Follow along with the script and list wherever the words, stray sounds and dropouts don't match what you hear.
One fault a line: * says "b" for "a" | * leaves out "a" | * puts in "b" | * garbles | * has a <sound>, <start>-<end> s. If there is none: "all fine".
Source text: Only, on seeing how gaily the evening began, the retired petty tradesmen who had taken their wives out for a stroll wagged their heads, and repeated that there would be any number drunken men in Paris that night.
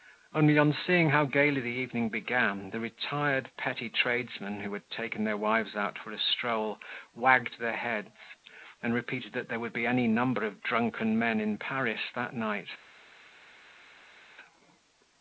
* puts in "of"